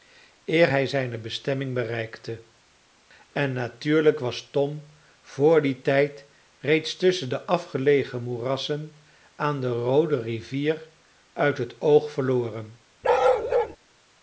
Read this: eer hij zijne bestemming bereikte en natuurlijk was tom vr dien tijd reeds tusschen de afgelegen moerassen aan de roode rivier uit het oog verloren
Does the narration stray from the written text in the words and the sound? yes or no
yes